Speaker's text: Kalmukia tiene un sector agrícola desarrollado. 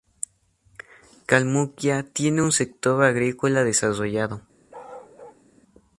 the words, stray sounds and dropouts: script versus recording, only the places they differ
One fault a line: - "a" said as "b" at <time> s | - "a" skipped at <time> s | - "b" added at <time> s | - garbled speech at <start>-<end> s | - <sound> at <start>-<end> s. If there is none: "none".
- bark at 4.7-5.4 s